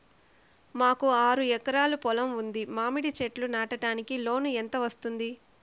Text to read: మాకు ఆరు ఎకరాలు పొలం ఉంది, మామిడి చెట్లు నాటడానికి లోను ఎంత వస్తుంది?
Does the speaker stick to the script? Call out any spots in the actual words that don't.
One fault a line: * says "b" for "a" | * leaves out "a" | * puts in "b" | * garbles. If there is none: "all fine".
all fine